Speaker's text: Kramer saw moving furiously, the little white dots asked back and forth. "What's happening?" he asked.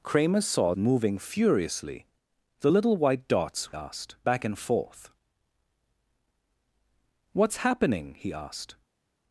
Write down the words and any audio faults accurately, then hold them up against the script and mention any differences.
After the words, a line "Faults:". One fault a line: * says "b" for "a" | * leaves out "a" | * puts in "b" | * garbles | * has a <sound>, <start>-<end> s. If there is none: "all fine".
Kramer saw moving furiously, the little white dots asked back and forth. "What's happening?" he asked.
Faults:
all fine